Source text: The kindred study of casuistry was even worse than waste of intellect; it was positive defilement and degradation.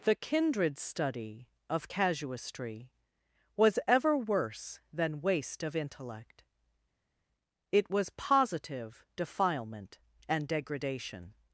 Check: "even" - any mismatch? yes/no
yes